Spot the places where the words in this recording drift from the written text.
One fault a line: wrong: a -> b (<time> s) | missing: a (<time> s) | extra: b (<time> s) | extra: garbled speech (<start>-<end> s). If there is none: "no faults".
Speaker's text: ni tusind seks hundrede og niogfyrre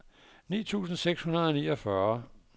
no faults